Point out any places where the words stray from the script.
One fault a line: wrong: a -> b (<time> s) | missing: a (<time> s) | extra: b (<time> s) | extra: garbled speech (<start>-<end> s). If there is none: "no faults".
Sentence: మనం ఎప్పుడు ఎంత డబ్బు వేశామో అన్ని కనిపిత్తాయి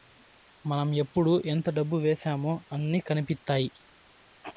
no faults